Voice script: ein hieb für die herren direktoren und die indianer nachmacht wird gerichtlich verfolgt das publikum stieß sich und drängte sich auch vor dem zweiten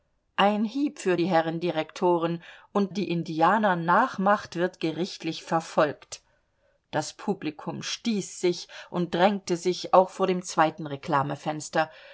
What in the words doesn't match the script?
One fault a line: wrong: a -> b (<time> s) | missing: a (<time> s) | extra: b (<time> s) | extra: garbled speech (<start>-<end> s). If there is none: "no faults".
no faults